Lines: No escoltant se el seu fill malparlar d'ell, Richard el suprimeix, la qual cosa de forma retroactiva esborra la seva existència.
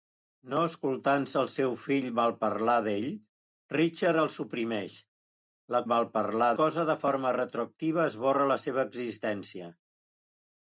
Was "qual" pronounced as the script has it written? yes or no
no